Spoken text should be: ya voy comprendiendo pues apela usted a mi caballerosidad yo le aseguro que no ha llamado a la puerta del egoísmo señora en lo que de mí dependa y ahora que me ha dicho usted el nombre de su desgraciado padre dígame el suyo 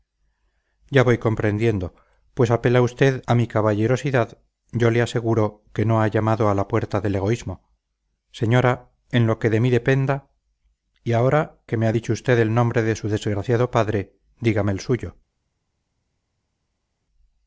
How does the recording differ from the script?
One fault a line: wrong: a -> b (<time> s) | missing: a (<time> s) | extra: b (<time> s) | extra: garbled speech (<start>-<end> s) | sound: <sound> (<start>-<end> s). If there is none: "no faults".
no faults